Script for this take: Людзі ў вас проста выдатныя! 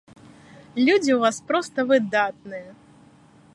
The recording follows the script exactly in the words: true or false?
true